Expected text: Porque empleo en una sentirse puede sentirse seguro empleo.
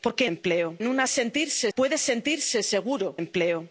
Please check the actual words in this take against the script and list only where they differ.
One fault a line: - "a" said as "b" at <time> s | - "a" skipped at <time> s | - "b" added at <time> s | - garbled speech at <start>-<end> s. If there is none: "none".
none